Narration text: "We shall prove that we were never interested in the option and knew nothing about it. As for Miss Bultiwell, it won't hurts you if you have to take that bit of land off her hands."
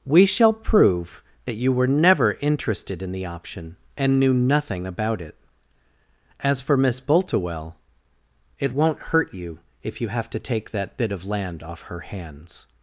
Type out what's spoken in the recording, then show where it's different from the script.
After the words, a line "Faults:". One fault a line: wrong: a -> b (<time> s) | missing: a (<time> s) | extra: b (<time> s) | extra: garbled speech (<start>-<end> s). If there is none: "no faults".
"We shall prove that you were never interested in the option and knew nothing about it. As for Miss Bultiwell, it won't hurt you if you have to take that bit of land off her hands."
Faults:
wrong: we -> you (1.6 s)
wrong: hurts -> hurt (9.0 s)